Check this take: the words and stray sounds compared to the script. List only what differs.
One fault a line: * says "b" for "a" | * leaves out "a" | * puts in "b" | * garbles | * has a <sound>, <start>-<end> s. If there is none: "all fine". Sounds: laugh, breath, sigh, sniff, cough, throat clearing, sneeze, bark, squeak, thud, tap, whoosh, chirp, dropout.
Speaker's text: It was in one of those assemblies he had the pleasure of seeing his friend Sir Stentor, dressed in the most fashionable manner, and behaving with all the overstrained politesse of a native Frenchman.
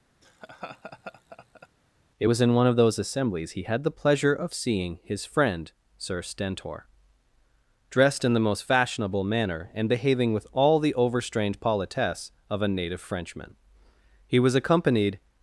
* has a laugh, 0.2-1.7 s
* puts in "He was accompanied"